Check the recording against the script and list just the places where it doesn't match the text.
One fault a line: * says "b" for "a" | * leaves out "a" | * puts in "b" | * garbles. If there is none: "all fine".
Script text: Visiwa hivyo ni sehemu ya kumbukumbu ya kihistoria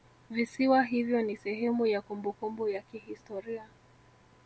all fine